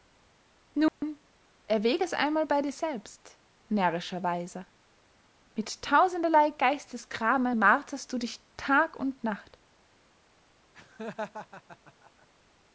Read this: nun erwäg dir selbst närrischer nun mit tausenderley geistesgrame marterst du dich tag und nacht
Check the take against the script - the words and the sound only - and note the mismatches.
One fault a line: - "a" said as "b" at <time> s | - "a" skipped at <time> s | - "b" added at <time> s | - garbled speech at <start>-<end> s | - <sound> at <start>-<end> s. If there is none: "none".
- dropout at 0.9-1.0 s
- "es einmal bey" added at 2.0 s
- "nun" said as "weiser" at 4.2 s
- laugh at 10.7-12.3 s